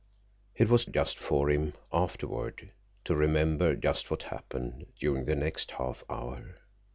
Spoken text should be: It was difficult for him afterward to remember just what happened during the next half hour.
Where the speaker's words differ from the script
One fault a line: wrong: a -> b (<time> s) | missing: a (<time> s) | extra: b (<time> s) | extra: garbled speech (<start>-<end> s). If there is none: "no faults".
wrong: difficult -> just (0.9 s)